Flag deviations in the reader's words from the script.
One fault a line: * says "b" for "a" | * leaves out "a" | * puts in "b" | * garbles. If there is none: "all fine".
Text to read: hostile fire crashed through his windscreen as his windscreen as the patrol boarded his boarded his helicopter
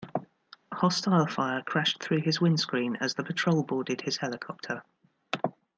* leaves out "his windscreen as"
* leaves out "boarded his"